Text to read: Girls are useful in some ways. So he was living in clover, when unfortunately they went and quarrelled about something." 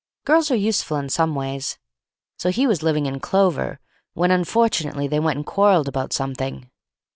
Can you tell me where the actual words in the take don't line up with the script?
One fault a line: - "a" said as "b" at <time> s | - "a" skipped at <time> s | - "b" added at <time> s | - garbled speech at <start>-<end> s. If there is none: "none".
none